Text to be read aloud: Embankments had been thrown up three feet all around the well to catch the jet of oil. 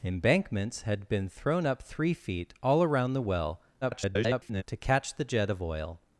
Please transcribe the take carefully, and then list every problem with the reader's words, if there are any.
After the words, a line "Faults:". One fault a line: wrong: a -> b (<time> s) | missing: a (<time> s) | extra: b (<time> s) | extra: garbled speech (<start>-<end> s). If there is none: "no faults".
Embankments had been thrown up three feet all around the well [garbled] to catch the jet of oil.
Faults:
extra: garbled speech (3.8-4.6 s)